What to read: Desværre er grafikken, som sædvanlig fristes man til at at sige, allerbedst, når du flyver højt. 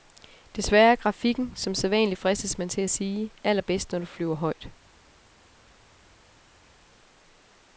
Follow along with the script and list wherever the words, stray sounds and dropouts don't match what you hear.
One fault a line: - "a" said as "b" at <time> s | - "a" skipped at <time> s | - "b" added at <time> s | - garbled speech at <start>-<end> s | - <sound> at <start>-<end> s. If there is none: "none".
- "at" skipped at 2.9 s